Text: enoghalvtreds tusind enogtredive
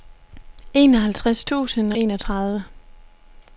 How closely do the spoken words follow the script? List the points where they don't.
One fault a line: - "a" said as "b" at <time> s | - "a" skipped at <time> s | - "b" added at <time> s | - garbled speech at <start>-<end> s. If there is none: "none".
none